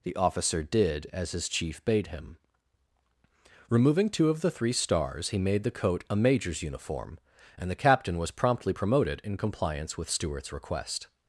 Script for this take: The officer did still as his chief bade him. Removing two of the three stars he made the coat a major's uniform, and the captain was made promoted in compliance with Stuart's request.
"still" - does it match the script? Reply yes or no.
no